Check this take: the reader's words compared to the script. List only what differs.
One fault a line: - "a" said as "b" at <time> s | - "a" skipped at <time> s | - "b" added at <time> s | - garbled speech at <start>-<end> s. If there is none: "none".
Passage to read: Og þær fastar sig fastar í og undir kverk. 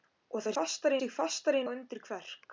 none